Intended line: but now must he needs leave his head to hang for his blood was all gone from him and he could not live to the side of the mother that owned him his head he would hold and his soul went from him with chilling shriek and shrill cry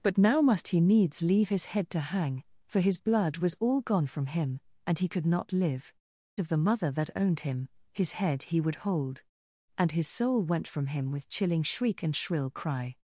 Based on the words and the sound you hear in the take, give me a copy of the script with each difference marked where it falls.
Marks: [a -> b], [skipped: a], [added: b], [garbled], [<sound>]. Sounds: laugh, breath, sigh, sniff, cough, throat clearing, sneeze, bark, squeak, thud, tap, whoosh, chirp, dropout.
but now must he needs leave his head to hang for his blood was all gone from him and he could not live [skipped: to the side] of the mother that owned him his head he would hold and his soul went from him with chilling shriek and shrill cry